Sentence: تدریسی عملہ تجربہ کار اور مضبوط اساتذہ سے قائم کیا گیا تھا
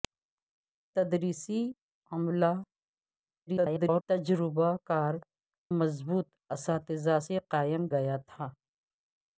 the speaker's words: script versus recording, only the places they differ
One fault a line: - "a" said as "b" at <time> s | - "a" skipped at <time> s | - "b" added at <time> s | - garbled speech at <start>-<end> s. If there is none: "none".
- garbled speech at 3.5-4.0 s
- "اور" skipped at 5.1 s
- "کیا" skipped at 7.9 s